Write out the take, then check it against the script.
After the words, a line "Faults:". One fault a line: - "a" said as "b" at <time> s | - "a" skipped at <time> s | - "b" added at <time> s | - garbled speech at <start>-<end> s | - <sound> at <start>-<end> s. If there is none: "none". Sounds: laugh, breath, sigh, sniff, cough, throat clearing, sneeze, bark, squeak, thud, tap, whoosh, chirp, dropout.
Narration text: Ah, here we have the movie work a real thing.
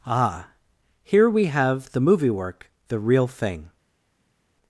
Ah, here we have the movie work the real thing.
Faults:
- "a" said as "the" at 2.9 s